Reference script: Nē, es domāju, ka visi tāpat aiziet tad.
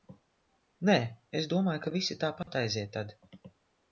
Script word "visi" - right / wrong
right